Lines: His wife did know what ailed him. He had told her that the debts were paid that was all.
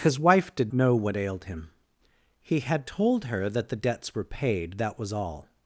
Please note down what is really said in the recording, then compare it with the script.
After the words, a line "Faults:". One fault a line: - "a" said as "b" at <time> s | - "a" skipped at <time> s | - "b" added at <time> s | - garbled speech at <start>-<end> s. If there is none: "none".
His wife did know what ailed him. He had told her that the debts were paid that was all.
Faults:
none